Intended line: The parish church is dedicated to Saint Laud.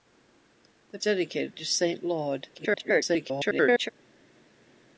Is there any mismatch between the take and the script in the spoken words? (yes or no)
yes